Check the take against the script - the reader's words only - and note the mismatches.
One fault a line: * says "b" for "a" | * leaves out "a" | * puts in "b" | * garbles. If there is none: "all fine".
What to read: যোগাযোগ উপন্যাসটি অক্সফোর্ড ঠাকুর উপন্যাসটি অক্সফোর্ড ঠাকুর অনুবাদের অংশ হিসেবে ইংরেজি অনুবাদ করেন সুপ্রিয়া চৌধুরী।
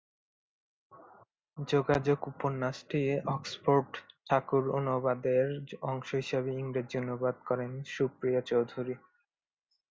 * leaves out "উপন্যাসটি অক্সফোর্ড ঠাকুর"